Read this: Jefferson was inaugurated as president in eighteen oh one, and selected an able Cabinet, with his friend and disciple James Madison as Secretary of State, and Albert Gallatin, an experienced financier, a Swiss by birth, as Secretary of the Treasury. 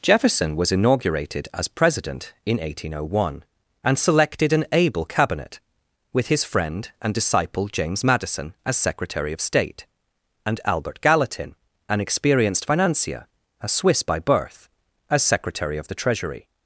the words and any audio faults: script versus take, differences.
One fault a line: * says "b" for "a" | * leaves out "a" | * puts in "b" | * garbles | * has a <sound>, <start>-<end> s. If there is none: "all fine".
all fine